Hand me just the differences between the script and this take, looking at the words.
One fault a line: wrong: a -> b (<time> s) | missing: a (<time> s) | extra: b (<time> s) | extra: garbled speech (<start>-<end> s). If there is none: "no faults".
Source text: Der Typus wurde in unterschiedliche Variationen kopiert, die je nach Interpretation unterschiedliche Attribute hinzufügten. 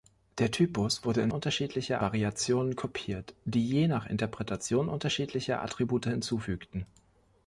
no faults